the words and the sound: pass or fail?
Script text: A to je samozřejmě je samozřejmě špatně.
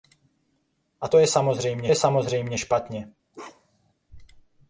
fail